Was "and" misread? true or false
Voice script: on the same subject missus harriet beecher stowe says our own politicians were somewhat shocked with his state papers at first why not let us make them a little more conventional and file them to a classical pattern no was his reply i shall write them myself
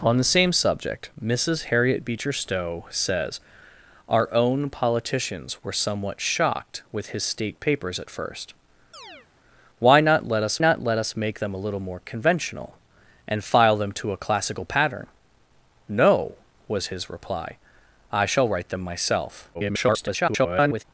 false